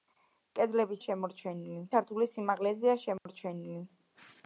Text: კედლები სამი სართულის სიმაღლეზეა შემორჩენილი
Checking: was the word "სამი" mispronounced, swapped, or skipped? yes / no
yes